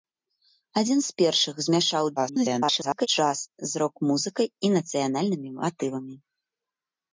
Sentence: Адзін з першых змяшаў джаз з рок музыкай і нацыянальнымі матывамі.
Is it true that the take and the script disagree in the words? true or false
true